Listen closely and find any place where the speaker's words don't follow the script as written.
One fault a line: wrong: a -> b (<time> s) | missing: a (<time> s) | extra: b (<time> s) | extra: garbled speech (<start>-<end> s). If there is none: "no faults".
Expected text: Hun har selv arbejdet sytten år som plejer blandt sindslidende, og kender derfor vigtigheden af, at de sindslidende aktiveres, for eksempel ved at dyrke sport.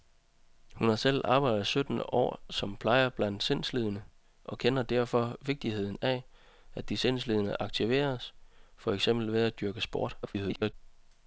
extra: garbled speech (10.2-10.7 s)